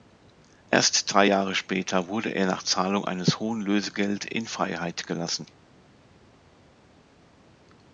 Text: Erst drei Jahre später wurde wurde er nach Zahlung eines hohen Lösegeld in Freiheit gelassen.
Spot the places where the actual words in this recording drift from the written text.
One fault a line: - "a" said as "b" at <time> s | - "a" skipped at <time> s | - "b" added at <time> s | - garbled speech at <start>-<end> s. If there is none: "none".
- "wurde" skipped at 2.3 s